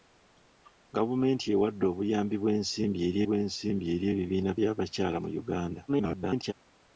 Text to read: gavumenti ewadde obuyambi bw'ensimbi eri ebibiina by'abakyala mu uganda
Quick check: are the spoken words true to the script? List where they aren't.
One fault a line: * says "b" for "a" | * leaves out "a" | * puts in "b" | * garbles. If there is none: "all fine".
* puts in "bw'ensimbi eri"
* garbles